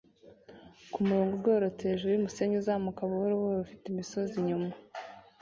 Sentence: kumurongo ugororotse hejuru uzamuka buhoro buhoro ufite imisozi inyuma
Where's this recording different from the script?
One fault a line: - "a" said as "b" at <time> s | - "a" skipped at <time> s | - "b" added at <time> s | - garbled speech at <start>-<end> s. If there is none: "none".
- "yumusenyi" added at 2.1 s